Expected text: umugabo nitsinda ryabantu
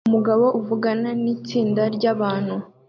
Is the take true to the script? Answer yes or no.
no